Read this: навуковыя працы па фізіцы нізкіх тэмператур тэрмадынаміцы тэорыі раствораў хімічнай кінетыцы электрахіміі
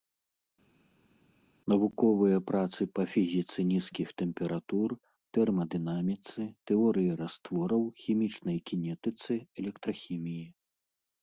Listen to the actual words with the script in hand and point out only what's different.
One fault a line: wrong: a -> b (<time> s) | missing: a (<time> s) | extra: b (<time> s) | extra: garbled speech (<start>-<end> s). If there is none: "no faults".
no faults